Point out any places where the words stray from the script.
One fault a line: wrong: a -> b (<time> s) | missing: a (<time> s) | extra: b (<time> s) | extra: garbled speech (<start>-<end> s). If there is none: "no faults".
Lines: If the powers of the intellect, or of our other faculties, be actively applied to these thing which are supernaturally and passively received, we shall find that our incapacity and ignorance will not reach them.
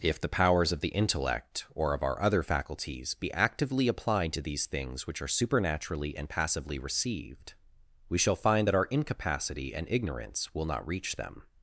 wrong: thing -> things (4.7 s)